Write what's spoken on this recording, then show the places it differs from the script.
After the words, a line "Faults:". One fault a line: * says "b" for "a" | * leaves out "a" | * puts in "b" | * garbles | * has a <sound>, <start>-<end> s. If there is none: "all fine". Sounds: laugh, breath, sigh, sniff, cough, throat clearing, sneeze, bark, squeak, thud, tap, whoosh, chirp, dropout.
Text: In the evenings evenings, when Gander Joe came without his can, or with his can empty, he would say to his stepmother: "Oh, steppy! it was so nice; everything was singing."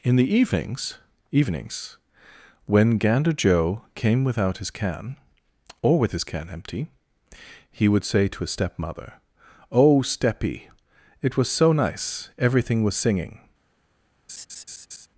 In the evenings evenings, when Gander Joe came without his can, or with his can empty, he would say to his stepmother: "Oh, steppy! it was so nice; everything was singing."
Faults:
* has a laugh, 14.3-15.1 s